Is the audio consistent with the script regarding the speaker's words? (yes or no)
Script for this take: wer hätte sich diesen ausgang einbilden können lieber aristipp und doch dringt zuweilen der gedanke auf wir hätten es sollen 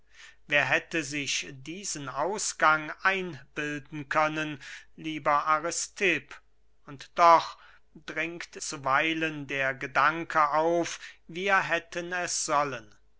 yes